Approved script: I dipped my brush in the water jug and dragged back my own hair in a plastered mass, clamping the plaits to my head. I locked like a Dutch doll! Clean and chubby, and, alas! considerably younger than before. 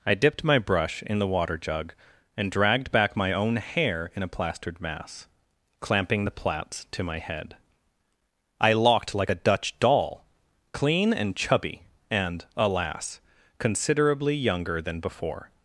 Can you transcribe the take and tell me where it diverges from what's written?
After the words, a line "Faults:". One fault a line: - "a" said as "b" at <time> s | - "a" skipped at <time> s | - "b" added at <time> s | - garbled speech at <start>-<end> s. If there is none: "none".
I dipped my brush in the water jug and dragged back my own hair in a plastered mass, clamping the plaits to my head. I locked like a Dutch doll! Clean and chubby, and, alas! considerably younger than before.
Faults:
none